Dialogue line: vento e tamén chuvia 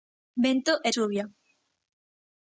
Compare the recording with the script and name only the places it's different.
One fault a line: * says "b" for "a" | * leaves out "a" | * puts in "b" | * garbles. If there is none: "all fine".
* leaves out "tamén"